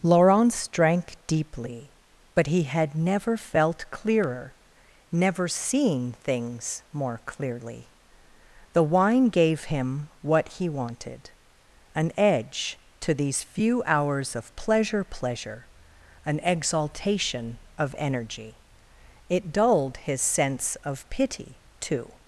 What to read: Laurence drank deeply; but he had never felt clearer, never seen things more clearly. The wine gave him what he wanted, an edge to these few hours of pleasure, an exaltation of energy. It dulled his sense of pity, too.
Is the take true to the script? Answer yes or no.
no